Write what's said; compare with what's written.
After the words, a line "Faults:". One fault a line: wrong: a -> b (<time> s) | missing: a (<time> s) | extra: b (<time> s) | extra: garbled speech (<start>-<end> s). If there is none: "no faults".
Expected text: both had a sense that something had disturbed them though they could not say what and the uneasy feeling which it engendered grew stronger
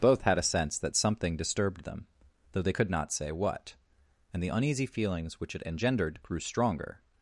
both had a sense that something disturbed them though they could not say what and the uneasy feelings which it engendered grew stronger
Faults:
missing: had (1.4 s)
wrong: feeling -> feelings (4.9 s)